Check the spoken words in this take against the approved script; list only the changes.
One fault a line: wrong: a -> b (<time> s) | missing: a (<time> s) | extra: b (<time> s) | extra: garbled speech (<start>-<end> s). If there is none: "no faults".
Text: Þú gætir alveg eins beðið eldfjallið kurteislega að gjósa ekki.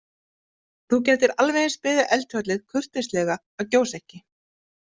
no faults